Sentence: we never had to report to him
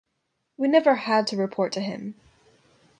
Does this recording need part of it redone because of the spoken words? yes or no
no